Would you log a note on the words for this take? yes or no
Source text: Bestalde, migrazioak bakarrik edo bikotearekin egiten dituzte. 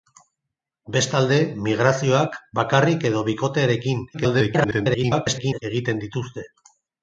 yes